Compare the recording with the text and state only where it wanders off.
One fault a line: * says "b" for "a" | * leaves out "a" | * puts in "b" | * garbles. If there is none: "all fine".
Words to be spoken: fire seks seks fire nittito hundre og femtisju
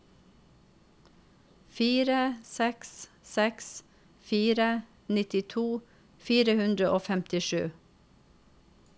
* puts in "fire"